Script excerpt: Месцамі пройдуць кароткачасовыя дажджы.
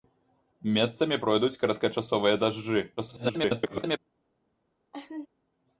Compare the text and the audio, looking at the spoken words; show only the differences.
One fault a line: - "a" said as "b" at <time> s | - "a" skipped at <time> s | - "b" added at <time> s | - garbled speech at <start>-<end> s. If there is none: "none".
- garbled speech at 3.0-4.0 s